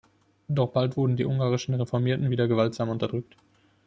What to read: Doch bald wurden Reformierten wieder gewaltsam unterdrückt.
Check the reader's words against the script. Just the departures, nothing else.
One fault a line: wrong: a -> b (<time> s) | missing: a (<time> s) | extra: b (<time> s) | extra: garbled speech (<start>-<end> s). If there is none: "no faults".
extra: die ungarischen (1.1 s)